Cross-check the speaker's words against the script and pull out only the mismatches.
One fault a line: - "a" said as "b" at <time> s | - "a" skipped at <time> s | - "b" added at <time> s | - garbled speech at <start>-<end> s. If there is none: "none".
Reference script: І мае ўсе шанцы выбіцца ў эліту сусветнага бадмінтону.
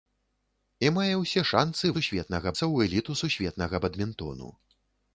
- "выбіцца" said as "сусветнага" at 2.0 s